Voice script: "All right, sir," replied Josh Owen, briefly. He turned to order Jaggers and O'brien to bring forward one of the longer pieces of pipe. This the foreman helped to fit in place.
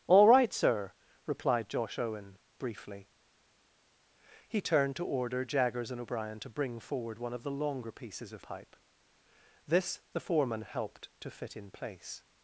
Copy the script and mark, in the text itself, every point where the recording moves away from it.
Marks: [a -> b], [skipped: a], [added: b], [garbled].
"All right, sir," replied Josh Owen, briefly. He turned to order Jaggers and O'brien to bring forward one of the longer pieces of pipe. This the foreman helped to fit in place.